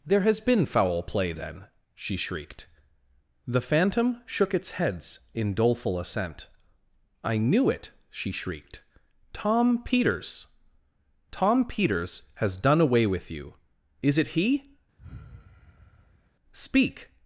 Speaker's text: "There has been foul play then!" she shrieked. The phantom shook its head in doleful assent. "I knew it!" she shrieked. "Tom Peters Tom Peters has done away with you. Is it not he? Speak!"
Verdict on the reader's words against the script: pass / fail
fail